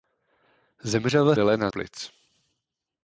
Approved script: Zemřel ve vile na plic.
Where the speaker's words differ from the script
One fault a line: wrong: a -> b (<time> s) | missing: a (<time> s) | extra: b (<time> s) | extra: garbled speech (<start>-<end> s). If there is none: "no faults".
no faults